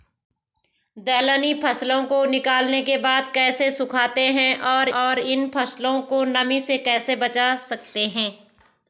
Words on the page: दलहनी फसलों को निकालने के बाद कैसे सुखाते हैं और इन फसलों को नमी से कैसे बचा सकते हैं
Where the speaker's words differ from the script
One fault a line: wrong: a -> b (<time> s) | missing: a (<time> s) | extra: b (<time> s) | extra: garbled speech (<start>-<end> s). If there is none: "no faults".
extra: और (5.0 s)